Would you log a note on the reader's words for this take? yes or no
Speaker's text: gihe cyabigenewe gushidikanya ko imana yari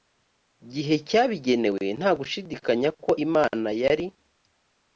yes